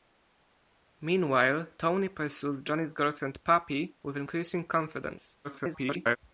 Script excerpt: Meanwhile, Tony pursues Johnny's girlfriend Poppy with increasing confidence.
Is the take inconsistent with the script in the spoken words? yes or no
yes